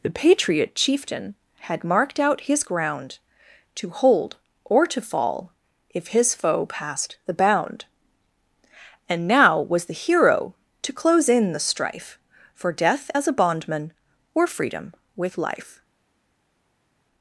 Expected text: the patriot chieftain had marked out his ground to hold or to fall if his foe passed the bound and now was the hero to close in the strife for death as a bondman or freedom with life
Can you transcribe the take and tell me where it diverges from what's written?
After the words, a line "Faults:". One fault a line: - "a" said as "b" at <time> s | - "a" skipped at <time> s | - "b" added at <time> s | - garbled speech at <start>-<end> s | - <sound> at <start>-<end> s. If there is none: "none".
the patriot chieftain had marked out his ground to hold or to fall if his foe passed the bound and now was the hero to close in the strife for death as a bondman or freedom with life
Faults:
none